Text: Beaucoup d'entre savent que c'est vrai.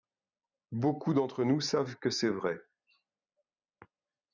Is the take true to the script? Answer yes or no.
no